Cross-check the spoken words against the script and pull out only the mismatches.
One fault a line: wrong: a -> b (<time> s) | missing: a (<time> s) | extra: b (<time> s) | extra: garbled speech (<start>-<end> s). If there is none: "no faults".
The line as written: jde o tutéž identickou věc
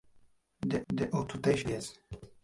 extra: jde (0.9 s)
missing: identickou (1.7 s)